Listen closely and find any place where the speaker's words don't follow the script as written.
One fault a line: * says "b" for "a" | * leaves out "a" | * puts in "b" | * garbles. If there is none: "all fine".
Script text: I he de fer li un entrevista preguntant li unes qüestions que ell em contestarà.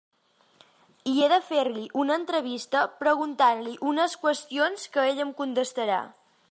* says "una" for "un"